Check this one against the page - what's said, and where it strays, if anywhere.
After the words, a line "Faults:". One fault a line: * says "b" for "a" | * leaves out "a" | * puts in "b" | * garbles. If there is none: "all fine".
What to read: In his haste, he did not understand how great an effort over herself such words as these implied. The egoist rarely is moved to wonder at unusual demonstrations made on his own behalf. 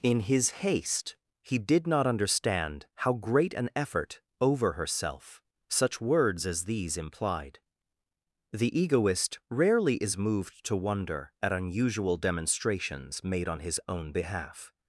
In his haste, he did not understand how great an effort over herself such words as these implied. The egoist rarely is moved to wonder at unusual demonstrations made on his own behalf.
Faults:
all fine